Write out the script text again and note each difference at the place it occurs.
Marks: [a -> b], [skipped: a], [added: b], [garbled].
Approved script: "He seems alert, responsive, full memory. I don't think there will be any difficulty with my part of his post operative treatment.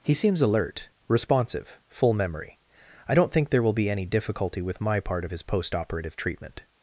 "He seems alert, responsive, full memory. I don't think there will be any difficulty with my part of his post operative treatment.